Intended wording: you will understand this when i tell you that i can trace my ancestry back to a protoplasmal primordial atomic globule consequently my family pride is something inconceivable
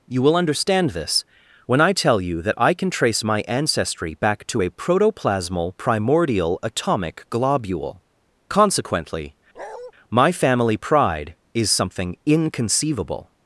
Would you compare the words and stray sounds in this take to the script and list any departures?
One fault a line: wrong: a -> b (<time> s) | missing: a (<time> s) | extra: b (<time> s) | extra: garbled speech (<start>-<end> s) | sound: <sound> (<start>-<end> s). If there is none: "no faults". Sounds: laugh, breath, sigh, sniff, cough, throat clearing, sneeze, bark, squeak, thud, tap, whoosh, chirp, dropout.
sound: bark (9.5-9.9 s)